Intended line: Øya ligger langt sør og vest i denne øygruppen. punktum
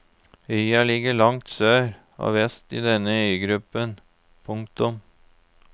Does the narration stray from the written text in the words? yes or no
no